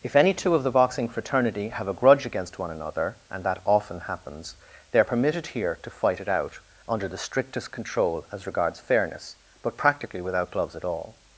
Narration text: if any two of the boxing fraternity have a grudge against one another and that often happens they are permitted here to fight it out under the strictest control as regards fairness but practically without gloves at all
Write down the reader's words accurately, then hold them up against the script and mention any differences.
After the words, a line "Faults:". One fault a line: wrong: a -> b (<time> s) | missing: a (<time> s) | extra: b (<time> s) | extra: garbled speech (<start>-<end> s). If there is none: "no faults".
if any two of the boxing fraternity have a grudge against one another and that often happens they are permitted here to fight it out under the strictest control as regards fairness but practically without gloves at all
Faults:
no faults